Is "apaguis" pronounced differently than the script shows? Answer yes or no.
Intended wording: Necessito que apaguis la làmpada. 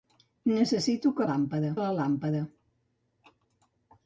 yes